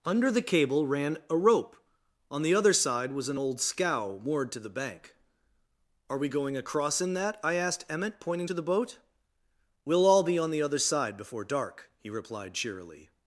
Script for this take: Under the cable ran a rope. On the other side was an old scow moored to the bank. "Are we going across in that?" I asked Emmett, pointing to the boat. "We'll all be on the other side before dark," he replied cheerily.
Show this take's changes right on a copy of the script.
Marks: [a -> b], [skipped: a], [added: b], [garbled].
Under the cable ran a rope. On the other side was an old scow moored to the bank. "Are we going across in that?" I asked Emmett, pointing to the boat. "We'll all be on the other side before dark," he replied cheerily.